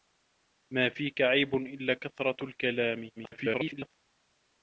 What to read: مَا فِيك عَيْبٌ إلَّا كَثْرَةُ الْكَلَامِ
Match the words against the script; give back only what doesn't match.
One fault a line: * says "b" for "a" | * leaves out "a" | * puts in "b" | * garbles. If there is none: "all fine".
* garbles